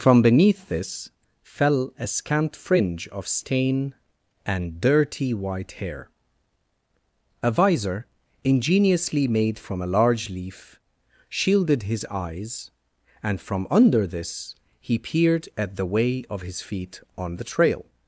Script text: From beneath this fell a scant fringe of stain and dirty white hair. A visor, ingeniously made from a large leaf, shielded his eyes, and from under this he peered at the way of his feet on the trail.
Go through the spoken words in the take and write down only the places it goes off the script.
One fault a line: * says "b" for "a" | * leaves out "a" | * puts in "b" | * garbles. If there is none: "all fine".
all fine